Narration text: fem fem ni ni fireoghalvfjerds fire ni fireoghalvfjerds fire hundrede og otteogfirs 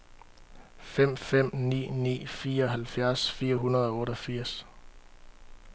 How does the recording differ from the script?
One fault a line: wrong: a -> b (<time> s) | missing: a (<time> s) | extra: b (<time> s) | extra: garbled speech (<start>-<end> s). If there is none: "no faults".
missing: ni fireoghalvfjerds fire (3.5 s)